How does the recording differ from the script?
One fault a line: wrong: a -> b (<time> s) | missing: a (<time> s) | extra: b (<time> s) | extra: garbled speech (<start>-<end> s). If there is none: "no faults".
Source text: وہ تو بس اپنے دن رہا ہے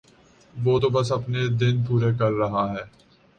extra: پورے کر (1.9 s)